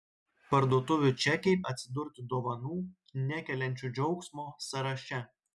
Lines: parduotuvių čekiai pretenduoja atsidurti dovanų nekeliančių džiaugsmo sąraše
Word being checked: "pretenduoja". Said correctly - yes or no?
no